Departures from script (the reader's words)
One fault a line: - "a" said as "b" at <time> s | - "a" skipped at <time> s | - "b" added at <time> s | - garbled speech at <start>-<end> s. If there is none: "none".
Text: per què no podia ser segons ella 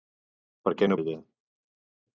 - "podia ser segons" skipped at 1.0 s